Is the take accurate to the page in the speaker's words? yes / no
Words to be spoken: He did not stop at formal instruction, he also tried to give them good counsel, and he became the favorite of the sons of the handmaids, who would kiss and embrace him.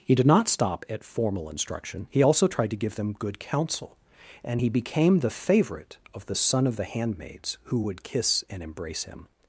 no